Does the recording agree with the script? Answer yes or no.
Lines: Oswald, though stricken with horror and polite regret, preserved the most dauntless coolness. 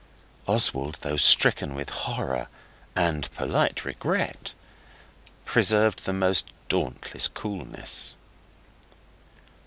yes